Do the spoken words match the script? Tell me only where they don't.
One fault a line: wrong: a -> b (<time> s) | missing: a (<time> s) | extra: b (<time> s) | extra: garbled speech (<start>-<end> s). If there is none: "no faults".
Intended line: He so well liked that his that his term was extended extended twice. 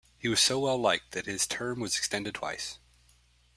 extra: was (0.3 s)
missing: that his (1.4 s)
missing: extended (2.4 s)